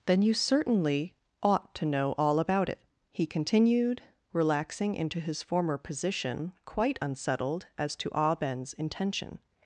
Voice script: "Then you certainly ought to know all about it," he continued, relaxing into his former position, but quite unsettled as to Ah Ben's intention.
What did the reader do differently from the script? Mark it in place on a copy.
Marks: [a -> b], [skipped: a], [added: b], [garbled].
"Then you certainly ought to know all about it," he continued, relaxing into his former position, [skipped: but] quite unsettled as to Ah Ben's intention.